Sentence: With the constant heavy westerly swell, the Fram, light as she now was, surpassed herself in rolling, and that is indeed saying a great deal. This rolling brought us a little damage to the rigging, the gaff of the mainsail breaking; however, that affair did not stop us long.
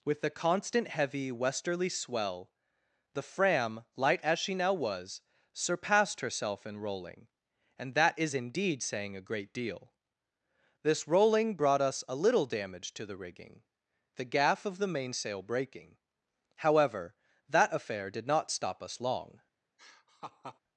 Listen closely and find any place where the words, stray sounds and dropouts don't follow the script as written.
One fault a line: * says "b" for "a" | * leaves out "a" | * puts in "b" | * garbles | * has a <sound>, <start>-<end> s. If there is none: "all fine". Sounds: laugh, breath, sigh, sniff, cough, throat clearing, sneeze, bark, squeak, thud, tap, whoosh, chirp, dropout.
* has a laugh, 19.8-20.6 s